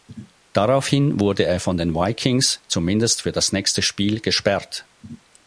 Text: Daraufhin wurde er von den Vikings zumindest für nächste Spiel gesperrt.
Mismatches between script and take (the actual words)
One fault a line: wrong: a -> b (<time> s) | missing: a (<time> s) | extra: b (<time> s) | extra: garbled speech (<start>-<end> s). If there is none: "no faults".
extra: das (3.3 s)